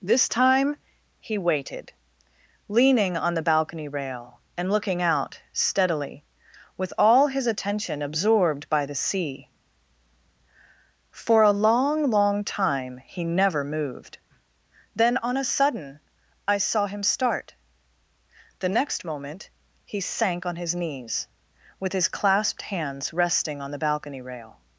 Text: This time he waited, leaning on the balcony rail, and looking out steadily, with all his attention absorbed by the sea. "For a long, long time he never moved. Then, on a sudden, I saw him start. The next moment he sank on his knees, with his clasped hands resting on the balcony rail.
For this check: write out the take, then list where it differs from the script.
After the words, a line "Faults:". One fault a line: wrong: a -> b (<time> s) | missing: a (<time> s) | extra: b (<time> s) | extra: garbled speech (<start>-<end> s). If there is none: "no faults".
This time he waited, leaning on the balcony rail, and looking out steadily, with all his attention absorbed by the sea. "For a long, long time he never moved. Then, on a sudden, I saw him start. The next moment he sank on his knees, with his clasped hands resting on the balcony rail.
Faults:
no faults